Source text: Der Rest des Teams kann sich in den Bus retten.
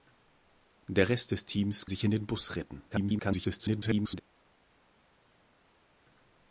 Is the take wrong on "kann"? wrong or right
wrong